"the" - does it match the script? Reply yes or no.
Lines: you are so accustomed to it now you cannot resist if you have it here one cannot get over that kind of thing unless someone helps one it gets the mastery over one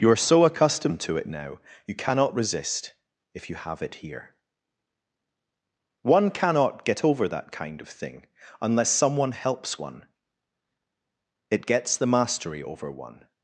yes